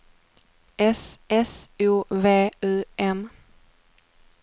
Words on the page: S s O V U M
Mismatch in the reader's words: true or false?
false